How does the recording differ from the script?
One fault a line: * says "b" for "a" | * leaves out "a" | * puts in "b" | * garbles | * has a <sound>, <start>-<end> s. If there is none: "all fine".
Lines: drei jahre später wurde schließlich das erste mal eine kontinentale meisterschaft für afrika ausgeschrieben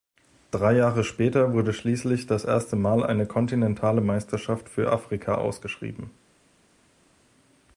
all fine